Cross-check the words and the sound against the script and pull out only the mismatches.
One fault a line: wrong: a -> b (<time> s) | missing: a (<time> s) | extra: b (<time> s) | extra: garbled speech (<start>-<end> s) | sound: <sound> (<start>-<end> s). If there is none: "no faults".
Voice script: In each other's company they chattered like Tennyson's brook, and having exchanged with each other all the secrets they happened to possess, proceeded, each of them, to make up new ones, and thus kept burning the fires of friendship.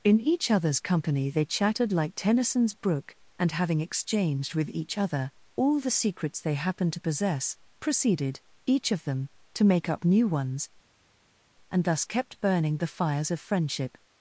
no faults